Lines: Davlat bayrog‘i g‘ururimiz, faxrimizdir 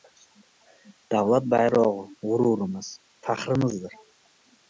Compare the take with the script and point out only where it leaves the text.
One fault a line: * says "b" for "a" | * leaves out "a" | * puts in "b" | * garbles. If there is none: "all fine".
all fine